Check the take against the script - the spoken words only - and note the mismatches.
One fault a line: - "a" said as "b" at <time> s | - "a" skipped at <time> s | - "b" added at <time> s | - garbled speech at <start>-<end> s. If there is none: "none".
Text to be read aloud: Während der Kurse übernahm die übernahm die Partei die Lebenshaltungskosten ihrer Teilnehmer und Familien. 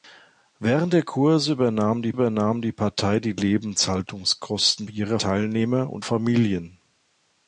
none